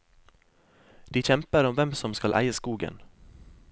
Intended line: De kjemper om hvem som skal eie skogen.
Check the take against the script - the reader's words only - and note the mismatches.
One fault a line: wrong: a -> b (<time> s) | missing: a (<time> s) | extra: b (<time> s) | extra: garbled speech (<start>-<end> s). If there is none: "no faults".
no faults